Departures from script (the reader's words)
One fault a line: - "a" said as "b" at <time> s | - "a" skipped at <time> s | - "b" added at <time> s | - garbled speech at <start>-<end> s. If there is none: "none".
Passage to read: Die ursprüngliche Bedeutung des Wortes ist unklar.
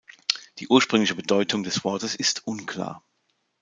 none